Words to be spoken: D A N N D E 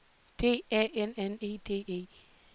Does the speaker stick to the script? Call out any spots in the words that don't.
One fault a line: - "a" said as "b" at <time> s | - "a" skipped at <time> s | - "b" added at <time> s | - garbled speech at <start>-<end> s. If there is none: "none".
- "E" added at 1.4 s